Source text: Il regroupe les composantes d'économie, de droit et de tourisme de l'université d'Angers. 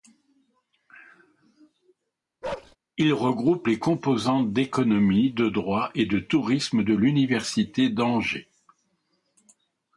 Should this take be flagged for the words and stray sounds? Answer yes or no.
yes